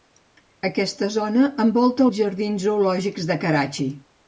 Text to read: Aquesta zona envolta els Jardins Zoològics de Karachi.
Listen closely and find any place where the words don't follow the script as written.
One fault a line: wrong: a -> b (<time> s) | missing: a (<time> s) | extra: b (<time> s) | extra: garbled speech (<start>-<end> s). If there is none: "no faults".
no faults